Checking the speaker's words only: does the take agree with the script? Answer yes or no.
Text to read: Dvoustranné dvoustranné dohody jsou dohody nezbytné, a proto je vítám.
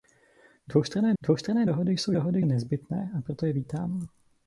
yes